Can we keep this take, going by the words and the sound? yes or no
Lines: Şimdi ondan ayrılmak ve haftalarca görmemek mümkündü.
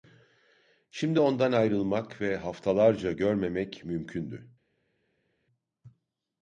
yes